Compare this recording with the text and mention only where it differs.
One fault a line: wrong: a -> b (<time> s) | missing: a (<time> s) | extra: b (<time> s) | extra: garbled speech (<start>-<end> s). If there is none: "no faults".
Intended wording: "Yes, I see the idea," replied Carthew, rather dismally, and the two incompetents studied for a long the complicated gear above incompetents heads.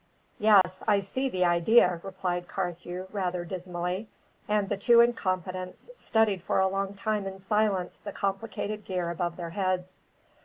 extra: time in silence (6.9 s)
wrong: incompetents -> their (9.3 s)